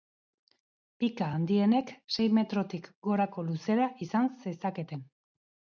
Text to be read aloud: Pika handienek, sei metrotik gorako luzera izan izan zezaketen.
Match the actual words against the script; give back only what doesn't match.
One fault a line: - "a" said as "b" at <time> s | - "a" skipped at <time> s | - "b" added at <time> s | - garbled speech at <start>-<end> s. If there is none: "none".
- "izan" skipped at 4.3 s